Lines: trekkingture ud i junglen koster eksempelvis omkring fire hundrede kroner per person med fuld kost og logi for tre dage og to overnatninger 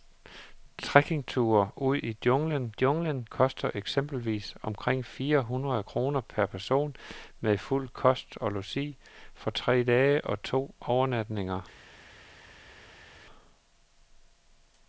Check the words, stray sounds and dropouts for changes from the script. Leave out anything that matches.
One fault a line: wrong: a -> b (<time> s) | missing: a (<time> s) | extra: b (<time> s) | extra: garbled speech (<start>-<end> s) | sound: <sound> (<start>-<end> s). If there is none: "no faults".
extra: junglen (2.8 s)